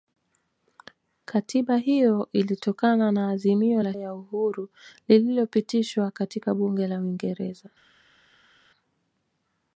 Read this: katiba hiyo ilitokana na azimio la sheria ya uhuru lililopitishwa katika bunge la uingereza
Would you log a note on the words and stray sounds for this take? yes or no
yes